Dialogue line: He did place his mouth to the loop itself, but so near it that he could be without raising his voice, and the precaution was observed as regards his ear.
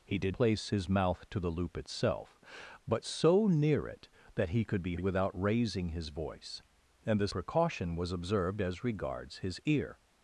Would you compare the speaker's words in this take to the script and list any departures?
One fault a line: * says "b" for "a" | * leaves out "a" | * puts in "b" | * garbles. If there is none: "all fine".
all fine